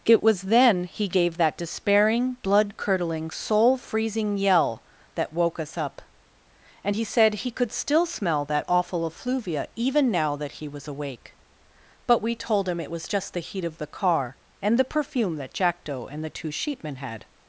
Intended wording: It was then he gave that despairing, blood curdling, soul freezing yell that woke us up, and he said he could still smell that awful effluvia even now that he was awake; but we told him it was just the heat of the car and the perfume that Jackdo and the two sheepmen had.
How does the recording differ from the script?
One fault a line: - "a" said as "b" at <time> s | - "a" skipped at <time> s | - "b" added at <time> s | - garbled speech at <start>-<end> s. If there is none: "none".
none